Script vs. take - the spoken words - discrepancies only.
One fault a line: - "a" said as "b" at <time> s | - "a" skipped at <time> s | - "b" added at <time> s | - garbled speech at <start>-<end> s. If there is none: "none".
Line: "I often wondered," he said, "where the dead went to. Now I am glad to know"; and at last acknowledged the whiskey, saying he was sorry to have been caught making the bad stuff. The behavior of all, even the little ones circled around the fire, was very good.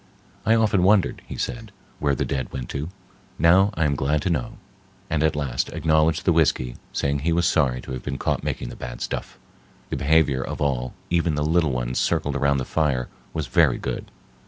none